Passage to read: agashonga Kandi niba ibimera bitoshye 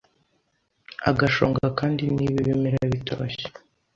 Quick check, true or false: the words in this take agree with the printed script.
true